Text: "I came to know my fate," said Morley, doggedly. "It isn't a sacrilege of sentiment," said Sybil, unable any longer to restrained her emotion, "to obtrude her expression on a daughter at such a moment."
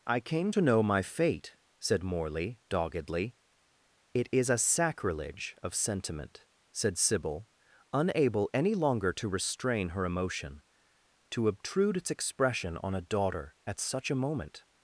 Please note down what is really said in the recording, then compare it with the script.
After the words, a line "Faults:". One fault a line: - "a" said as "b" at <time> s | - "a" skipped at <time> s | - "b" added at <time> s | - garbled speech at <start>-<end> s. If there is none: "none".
"I came to know my fate," said Morley, doggedly. "It is a sacrilege of sentiment," said Sybil, unable any longer to restrain her emotion, "to obtrude its expression on a daughter at such a moment."
Faults:
- "isn't" said as "is" at 4.3 s
- "restrained" said as "restrain" at 9.4 s
- "her" said as "its" at 12.0 s